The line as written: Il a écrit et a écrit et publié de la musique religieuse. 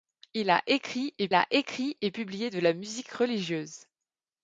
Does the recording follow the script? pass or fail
pass